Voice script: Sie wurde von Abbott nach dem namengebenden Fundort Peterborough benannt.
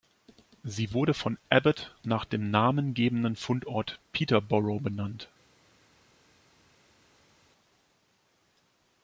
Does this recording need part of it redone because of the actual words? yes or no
no